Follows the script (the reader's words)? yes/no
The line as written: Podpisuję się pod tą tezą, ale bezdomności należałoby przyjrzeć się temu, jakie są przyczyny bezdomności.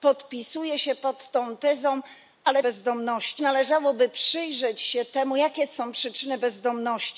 yes